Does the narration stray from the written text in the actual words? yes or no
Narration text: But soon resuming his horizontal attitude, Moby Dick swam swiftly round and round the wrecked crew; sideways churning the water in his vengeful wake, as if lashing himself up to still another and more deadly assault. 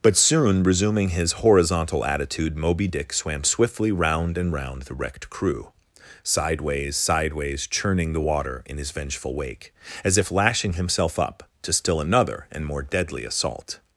yes